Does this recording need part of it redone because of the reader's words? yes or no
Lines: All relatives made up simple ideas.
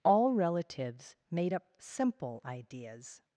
no